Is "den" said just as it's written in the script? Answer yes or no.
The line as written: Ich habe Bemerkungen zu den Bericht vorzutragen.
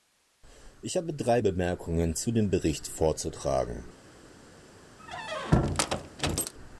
no